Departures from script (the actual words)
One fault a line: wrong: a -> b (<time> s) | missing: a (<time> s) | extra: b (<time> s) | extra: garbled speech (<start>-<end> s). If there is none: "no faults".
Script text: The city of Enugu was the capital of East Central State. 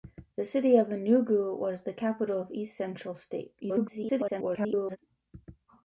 extra: garbled speech (3.6-5.0 s)